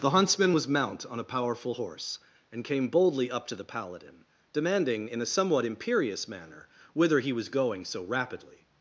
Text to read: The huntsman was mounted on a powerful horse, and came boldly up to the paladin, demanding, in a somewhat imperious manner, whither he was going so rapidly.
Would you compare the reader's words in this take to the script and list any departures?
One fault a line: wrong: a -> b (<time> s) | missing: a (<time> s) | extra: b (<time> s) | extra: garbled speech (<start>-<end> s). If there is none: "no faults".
wrong: mounted -> mount (0.7 s)